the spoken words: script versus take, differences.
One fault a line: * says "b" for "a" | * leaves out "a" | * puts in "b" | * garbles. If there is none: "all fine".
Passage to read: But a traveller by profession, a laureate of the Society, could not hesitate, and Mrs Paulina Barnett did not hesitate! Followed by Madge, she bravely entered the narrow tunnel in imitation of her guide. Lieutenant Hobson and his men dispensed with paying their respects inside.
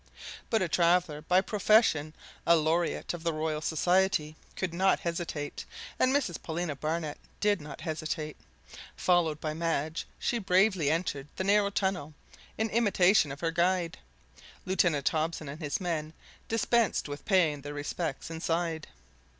* puts in "Royal"